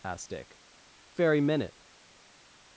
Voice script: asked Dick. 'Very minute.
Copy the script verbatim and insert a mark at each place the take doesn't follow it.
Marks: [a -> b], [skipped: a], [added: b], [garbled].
asked Dick. 'Very minute.